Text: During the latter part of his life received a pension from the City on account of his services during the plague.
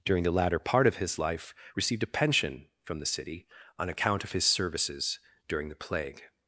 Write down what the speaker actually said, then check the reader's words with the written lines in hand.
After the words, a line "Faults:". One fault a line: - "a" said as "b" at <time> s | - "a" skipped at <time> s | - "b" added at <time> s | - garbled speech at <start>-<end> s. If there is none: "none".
During the latter part of his life received a pension from the City on account of his services during the plague.
Faults:
none